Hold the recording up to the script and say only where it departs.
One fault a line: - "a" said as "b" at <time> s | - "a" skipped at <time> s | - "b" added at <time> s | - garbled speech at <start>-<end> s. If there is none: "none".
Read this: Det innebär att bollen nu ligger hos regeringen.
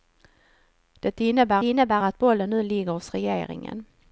- "innebär" added at 1.6 s